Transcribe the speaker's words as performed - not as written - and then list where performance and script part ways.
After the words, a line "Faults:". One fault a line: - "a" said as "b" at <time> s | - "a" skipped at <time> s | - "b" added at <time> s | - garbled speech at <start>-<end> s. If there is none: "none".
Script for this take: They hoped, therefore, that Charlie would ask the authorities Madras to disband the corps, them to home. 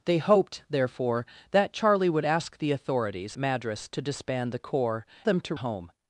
They hoped, therefore, that Charlie would ask the authorities Madras to disband the corps, them to home.
Faults:
none